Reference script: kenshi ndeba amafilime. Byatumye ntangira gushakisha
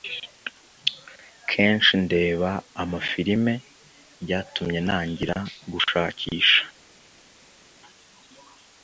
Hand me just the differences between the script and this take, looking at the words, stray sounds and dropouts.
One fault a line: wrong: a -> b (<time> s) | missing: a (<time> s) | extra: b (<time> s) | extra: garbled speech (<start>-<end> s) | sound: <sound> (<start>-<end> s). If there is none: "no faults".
no faults